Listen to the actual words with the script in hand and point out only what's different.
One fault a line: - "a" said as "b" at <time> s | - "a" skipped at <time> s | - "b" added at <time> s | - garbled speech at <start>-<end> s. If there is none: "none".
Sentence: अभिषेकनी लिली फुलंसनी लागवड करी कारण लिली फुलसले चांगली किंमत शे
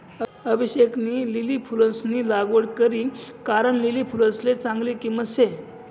none